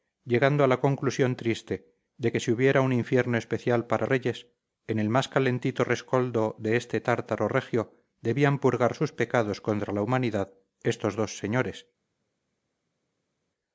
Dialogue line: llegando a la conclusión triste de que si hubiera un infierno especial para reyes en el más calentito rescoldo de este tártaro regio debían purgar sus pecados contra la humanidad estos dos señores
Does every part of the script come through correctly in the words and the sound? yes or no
yes